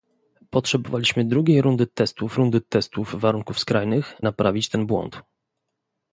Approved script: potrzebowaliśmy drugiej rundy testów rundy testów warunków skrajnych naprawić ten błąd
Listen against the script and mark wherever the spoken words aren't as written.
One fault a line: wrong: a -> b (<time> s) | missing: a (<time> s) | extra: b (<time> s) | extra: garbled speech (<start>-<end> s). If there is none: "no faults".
no faults